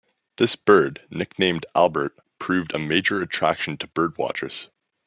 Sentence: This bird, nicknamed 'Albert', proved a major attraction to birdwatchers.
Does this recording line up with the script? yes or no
yes